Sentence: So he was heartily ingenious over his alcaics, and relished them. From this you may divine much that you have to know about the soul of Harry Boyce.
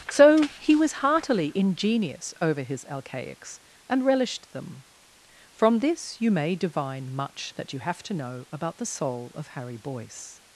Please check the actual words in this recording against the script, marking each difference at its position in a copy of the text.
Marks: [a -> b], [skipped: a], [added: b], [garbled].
So he was heartily ingenious over his alcaics, and relished them. From this you may divine much that you have to know about the soul of Harry Boyce.